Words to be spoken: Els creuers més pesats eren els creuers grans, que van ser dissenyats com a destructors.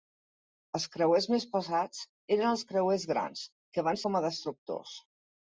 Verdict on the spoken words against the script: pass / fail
fail